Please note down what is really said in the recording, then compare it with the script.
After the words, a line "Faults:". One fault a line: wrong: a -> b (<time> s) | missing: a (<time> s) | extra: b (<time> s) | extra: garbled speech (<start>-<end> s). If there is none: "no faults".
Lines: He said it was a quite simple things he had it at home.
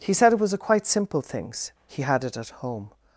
He said it was a quite simple things he had it at home.
Faults:
no faults